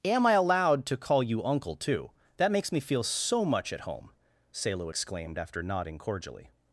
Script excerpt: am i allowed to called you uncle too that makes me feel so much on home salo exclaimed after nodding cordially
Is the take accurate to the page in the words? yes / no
no